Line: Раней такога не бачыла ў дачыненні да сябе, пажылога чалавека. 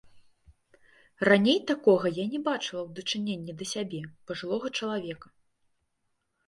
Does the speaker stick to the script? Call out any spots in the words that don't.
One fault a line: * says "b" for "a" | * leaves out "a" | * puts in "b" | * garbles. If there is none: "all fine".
* puts in "я"